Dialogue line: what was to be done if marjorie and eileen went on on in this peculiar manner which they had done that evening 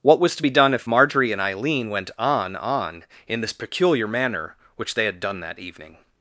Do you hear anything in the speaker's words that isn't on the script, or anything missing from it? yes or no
no